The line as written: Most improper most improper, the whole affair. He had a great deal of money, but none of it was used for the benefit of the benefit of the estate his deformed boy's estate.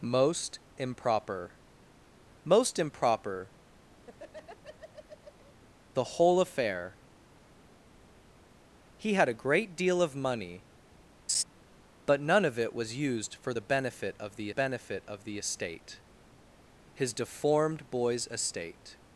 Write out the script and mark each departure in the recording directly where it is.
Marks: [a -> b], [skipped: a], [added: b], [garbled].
Most improper most improper, the whole affair. He had a great deal of money, but none of it was used for the benefit of the benefit of the estate his deformed boy's estate.